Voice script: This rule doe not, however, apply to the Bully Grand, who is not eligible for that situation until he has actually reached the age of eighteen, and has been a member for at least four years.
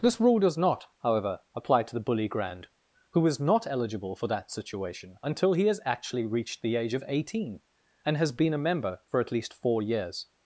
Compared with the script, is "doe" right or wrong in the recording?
wrong